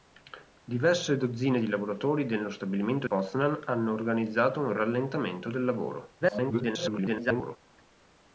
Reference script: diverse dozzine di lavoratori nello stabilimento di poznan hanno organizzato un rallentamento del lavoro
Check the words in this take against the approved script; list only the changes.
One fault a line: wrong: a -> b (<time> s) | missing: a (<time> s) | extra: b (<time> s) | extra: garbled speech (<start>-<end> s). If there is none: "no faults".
missing: di (3.1 s)
extra: garbled speech (6.2-7.6 s)